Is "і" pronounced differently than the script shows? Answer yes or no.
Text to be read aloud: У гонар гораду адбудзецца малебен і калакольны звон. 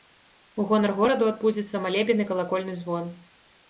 no